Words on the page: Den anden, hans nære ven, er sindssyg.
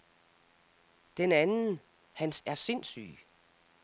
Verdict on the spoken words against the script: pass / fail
fail